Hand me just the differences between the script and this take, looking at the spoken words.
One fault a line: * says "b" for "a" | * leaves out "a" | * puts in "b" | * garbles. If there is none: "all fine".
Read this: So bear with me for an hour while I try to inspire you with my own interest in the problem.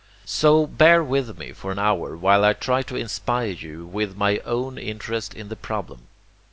all fine